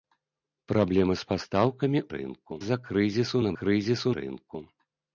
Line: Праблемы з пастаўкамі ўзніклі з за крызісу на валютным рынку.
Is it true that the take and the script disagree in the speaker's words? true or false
true